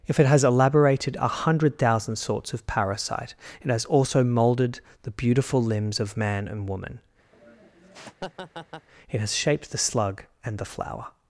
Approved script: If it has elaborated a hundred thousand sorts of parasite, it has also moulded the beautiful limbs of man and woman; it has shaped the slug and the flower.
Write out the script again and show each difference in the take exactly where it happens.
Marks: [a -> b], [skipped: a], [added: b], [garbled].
If it has elaborated a hundred thousand sorts of parasite, it has also moulded the beautiful limbs of man and woman; it has shaped the slug and the flower.